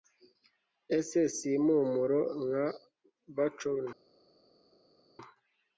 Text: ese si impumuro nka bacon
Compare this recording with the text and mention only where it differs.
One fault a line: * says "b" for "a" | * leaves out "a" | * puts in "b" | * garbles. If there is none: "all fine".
all fine